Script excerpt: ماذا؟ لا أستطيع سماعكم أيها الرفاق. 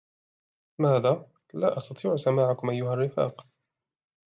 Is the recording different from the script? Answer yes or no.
no